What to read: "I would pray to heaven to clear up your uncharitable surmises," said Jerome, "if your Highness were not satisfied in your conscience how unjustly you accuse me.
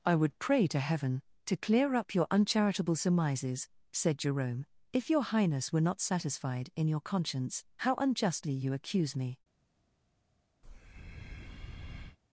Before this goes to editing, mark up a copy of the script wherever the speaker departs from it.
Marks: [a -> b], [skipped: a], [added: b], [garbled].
"I would pray to heaven to clear up your uncharitable surmises," said Jerome, "if your Highness were not satisfied in your conscience how unjustly you accuse me.